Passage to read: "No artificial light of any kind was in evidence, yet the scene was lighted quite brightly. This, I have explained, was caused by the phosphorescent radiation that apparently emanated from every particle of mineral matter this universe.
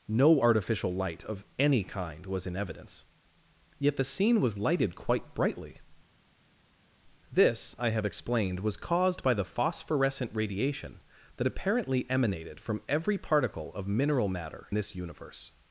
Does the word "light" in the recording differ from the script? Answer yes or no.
no